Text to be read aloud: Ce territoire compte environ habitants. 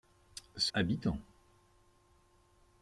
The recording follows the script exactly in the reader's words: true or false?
false